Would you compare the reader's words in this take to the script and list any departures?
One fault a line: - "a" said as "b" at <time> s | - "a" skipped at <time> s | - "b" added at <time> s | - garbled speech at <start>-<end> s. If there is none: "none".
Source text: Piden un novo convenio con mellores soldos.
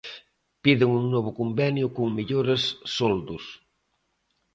none